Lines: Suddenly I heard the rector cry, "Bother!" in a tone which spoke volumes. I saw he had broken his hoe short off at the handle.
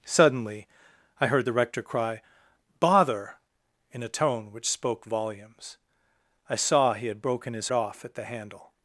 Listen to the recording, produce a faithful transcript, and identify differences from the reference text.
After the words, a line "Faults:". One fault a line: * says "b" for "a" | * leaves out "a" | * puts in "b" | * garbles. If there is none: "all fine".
Suddenly I heard the rector cry, "Bother!" in a tone which spoke volumes. I saw he had broken his off at the handle.
Faults:
* leaves out "hoe short"